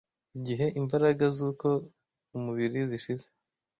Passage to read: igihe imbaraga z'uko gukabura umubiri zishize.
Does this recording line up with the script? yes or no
no